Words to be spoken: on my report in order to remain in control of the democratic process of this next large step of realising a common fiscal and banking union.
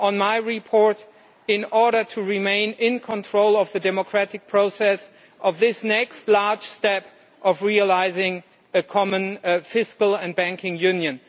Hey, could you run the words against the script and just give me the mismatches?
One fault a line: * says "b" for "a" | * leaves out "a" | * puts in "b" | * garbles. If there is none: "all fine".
all fine